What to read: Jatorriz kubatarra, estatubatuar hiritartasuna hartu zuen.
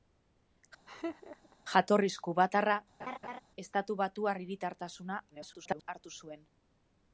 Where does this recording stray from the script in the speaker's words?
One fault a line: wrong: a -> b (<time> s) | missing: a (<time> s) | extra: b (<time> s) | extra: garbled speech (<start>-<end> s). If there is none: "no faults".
extra: garbled speech (5.3-5.9 s)